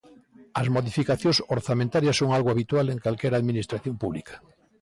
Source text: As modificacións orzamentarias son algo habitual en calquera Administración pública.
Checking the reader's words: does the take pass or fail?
pass